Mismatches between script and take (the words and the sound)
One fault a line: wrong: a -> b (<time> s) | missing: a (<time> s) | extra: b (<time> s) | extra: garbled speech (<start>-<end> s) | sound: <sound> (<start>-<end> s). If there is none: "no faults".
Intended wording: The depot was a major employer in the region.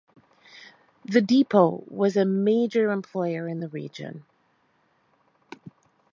no faults